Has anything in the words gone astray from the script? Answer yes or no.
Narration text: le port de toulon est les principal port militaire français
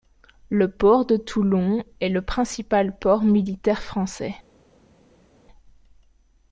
yes